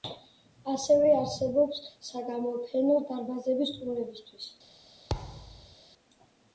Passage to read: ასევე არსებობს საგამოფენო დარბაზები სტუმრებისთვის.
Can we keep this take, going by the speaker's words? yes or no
yes